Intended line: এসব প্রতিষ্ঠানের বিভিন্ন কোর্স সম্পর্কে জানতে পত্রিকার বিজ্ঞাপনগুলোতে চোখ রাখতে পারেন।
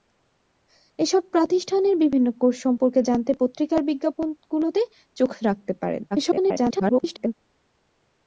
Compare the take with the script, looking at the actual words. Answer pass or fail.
fail